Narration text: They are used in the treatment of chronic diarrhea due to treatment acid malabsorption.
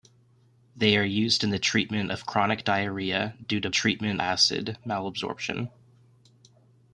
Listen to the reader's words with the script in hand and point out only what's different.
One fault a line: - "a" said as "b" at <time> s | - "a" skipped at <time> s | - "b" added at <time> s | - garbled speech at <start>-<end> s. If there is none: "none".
none